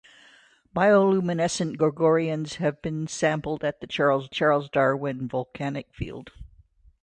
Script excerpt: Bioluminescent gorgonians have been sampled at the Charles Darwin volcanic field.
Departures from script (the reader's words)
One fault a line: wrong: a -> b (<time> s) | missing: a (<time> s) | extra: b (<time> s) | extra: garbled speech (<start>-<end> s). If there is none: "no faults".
extra: Charles (4.3 s)